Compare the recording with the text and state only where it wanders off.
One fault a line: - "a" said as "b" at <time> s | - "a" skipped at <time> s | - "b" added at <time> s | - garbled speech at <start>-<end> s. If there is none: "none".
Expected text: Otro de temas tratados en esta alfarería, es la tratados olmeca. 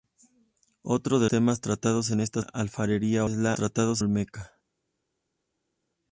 none